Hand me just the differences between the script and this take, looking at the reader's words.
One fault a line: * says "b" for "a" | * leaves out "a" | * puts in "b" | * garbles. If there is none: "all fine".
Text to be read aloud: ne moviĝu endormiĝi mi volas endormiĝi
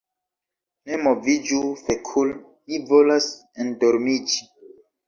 * says "fekul" for "endormiĝi"